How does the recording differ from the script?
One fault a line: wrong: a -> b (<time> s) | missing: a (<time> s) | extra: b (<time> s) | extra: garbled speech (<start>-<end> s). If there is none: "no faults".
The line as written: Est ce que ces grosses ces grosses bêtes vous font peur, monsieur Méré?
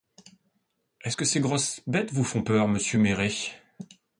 missing: ces grosses (1.8 s)